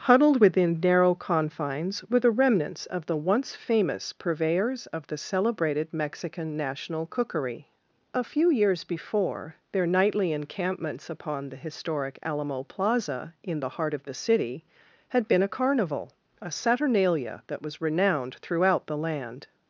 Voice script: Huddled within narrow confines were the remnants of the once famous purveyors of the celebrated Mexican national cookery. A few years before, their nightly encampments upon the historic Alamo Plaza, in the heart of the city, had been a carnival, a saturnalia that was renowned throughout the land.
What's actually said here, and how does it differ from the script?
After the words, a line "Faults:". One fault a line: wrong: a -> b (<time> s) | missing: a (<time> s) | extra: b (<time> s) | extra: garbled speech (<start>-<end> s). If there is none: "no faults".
Huddled within narrow confines were the remnants of the once famous purveyors of the celebrated Mexican national cookery. A few years before, their nightly encampments upon the historic Alamo Plaza, in the heart of the city, had been a carnival, a saturnalia that was renowned throughout the land.
Faults:
no faults